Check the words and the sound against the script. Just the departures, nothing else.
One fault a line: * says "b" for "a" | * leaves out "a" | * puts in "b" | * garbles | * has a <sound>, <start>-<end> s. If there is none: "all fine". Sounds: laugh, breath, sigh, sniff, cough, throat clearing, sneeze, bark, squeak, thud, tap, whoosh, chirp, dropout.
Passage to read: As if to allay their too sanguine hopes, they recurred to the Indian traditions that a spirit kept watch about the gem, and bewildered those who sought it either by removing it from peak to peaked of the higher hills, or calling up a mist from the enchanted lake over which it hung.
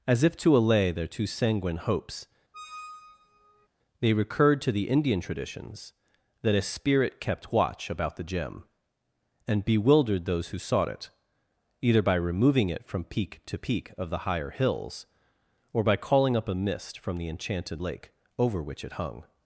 * has a squeak, 2.5-3.7 s
* says "peak" for "peaked"
* puts in "by"